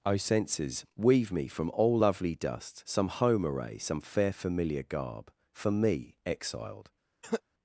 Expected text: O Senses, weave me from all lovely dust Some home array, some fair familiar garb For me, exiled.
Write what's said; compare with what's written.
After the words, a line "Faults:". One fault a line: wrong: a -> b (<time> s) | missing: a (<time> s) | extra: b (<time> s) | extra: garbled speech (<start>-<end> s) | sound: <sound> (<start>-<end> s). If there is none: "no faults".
O Senses, weave me from all lovely dust Some home array, some fair familiar garb For me, exiled.
Faults:
sound: cough (7.2-7.4 s)